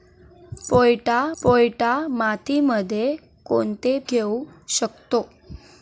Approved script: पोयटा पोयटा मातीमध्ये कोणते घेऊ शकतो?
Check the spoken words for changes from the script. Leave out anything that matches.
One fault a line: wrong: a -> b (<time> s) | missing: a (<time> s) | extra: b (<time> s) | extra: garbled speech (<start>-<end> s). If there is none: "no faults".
no faults